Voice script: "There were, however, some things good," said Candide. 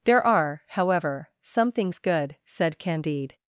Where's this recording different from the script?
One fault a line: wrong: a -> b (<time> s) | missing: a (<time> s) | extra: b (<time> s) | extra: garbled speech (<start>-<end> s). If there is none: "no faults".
wrong: were -> are (0.2 s)